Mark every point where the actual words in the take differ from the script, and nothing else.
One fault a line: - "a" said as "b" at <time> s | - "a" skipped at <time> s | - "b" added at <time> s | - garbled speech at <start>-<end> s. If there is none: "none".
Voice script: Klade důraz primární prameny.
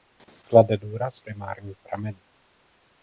none